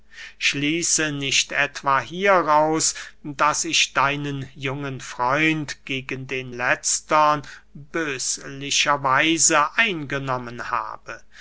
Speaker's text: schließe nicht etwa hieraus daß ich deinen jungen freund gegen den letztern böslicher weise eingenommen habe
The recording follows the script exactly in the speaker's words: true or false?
true